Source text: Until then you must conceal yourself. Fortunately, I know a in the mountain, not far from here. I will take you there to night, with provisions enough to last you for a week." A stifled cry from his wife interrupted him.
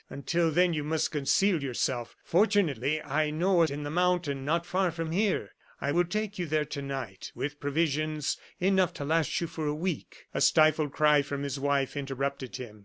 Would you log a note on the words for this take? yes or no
no